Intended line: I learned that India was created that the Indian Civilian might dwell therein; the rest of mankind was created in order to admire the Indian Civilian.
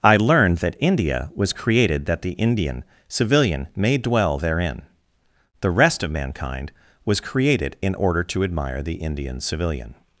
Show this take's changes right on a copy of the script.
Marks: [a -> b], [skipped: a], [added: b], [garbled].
I learned that India was created that the Indian Civilian [might -> may] dwell therein; the rest of mankind was created in order to admire the Indian Civilian.